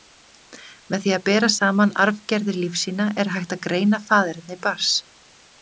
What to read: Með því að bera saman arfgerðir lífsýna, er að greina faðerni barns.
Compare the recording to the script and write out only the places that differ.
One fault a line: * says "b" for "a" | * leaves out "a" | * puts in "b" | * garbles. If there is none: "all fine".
* puts in "hægt"